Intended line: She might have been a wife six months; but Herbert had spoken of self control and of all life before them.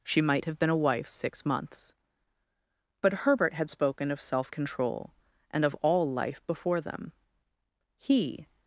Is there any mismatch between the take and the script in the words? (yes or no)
yes